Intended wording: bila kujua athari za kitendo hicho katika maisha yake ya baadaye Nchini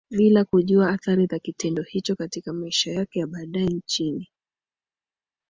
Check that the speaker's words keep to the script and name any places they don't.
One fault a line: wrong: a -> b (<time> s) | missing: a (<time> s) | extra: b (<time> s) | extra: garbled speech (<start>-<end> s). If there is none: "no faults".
no faults